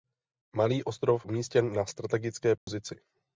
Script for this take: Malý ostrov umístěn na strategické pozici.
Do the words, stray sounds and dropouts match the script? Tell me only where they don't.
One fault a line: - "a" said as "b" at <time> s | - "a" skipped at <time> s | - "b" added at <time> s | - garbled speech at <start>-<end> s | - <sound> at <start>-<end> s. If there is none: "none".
- dropout at 2.6-2.7 s